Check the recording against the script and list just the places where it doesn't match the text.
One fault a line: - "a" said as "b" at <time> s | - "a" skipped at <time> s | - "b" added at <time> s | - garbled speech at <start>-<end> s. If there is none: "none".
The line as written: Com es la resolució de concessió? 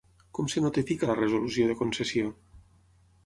- "notifica" added at 0.6 s